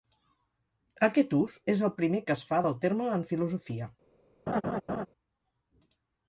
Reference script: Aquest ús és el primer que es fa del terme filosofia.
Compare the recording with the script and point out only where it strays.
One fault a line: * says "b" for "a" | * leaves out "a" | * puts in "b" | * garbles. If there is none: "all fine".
* puts in "en"